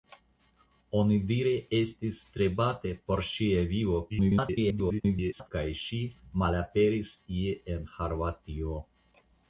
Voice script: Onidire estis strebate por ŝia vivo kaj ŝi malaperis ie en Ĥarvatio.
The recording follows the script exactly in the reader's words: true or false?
false